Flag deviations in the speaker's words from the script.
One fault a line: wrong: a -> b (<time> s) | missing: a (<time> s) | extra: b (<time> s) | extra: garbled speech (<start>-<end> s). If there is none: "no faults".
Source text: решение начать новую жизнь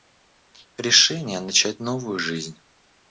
no faults